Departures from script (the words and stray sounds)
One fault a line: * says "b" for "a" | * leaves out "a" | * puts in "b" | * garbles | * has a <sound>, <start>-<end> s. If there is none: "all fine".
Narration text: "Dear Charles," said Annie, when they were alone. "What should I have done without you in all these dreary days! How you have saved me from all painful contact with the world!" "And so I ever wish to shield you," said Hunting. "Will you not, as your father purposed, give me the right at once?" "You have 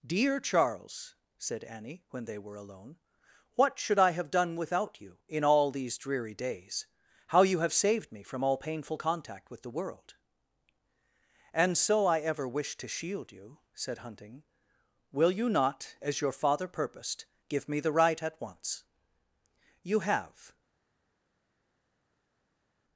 all fine